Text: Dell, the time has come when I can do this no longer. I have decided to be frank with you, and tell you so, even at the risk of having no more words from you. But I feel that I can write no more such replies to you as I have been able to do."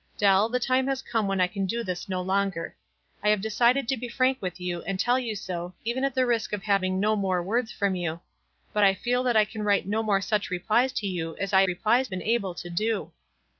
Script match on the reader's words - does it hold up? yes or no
no